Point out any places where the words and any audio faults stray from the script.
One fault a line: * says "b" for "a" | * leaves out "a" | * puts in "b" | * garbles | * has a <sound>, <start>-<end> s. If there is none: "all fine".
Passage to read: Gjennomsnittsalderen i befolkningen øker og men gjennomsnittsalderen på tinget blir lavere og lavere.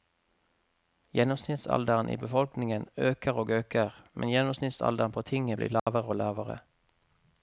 * puts in "øker"
* has a dropout, 5.8-5.9 s